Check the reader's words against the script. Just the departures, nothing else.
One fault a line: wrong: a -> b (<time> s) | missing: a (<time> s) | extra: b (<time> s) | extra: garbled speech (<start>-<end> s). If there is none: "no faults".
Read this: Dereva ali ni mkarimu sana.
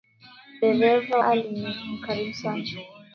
no faults